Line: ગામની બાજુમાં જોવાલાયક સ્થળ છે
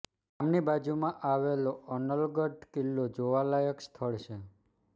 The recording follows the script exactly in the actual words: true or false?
false